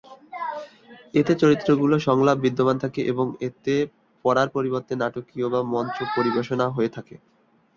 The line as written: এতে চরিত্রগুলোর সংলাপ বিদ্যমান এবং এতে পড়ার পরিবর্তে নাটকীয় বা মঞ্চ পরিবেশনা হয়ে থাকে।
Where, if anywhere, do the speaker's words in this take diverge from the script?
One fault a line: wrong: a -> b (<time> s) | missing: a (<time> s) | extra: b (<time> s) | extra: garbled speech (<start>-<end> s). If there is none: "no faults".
extra: থাকে (2.8 s)